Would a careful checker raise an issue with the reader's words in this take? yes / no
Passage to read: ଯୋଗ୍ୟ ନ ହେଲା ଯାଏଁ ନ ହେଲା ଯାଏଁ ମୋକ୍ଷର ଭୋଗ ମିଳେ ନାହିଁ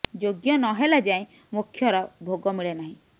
yes